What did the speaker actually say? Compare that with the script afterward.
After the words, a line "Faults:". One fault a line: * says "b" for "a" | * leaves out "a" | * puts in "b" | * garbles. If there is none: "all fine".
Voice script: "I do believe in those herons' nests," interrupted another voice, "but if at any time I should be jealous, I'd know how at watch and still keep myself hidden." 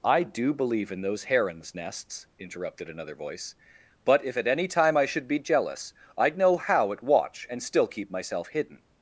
"I do believe in those herons' nests," interrupted another voice, "but if at any time I should be jealous, I'd know how at watch and still keep myself hidden."
Faults:
all fine